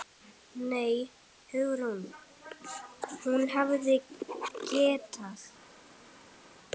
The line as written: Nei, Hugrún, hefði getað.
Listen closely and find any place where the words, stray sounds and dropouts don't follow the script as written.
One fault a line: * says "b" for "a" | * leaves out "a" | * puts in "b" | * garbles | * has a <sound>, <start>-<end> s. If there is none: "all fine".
* puts in "hún"